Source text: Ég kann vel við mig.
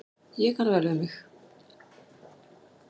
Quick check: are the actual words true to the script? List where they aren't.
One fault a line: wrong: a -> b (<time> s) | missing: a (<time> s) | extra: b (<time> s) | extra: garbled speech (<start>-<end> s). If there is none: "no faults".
no faults